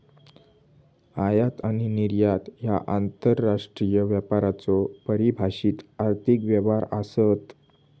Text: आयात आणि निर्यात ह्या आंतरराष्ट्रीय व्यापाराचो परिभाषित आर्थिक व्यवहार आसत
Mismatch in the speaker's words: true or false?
false